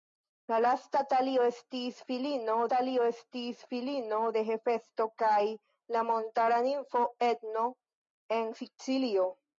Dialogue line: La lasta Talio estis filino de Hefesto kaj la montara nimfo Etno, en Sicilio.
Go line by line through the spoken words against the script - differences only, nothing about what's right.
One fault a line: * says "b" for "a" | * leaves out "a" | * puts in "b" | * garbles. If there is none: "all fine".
* puts in "Talio estis filino"